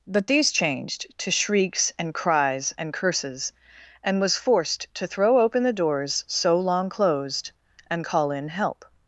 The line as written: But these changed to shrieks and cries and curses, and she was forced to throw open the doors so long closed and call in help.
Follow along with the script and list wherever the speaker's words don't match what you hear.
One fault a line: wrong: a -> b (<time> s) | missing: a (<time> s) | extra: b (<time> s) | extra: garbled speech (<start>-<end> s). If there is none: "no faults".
missing: she (4.2 s)